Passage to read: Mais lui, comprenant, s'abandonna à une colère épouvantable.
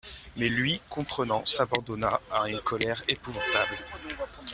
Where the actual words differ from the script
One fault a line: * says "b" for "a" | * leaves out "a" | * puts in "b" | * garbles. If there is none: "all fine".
all fine